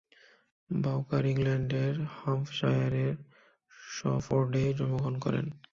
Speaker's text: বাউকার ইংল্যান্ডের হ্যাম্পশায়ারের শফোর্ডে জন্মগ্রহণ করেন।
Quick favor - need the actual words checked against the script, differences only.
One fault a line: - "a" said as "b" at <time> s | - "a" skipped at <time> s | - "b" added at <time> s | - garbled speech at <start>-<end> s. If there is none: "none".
none